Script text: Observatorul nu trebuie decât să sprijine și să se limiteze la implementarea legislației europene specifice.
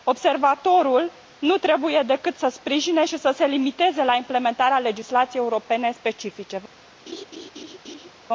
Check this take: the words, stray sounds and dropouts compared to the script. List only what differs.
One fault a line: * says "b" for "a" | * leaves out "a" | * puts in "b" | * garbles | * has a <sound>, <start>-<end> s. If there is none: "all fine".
* has a laugh, 7.1-8.1 s